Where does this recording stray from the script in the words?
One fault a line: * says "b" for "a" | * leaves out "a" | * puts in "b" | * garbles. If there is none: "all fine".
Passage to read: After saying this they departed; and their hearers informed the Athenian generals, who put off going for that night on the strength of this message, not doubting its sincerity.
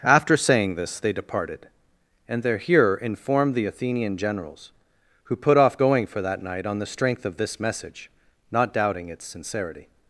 * says "hearer" for "hearers"